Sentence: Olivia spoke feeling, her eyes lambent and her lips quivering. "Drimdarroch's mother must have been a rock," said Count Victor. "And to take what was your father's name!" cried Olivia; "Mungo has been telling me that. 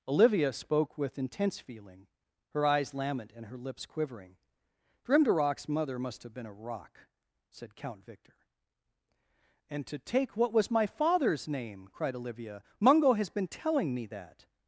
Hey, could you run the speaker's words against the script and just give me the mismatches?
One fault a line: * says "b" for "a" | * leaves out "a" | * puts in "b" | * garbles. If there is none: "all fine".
* puts in "with intense"
* says "my" for "your"